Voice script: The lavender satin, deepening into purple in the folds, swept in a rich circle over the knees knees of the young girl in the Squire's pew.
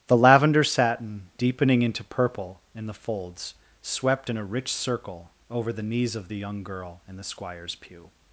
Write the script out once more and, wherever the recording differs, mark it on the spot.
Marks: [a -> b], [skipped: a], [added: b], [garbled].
The lavender satin, deepening into purple in the folds, swept in a rich circle over the knees [skipped: knees] of the young girl in the Squire's pew.